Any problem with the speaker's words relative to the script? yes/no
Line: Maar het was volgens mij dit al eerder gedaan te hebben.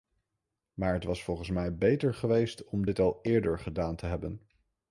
yes